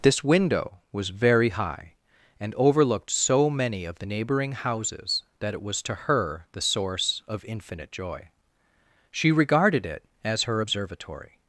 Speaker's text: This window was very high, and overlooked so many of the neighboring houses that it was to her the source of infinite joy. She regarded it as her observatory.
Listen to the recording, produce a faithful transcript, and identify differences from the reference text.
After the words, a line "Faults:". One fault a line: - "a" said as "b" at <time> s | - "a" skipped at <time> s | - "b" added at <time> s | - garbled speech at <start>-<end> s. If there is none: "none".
This window was very high, and overlooked so many of the neighboring houses that it was to her the source of infinite joy. She regarded it as her observatory.
Faults:
none